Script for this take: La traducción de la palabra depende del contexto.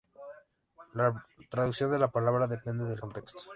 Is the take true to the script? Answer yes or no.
yes